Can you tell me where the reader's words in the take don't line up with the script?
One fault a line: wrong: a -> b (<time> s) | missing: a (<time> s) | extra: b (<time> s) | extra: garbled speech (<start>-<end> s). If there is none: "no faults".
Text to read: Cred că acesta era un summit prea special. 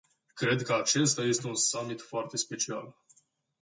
wrong: era -> este (1.2 s)
wrong: prea -> foarte (2.0 s)